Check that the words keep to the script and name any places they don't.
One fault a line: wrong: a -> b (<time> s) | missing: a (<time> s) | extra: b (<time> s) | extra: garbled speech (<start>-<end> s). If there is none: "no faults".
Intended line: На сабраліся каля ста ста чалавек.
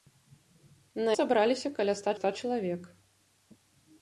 no faults